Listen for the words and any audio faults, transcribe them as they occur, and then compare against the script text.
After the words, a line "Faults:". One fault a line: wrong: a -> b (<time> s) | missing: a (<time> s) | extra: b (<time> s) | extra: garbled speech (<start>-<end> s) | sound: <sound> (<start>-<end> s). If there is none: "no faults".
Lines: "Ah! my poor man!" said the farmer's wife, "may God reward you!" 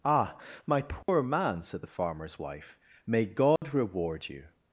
"Ah! my poor man!" said the farmer's wife, "may God reward you!"
Faults:
sound: dropout (1.0-1.1 s)
sound: dropout (3.6-3.6 s)